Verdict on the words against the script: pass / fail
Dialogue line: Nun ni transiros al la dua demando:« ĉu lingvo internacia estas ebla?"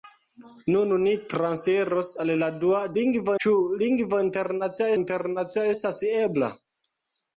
fail